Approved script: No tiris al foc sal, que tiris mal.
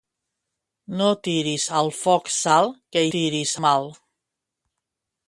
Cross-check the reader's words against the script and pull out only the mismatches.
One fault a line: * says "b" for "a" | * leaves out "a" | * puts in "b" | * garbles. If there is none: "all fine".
all fine